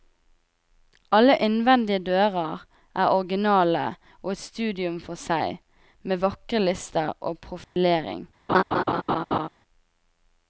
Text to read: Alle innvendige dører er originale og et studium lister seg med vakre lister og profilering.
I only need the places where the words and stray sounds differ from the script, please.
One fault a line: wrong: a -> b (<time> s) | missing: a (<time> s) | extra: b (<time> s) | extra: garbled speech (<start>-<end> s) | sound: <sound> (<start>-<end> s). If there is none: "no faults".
wrong: lister -> for (5.1 s)
sound: dropout (7.6-7.8 s)
sound: laugh (8.5-9.5 s)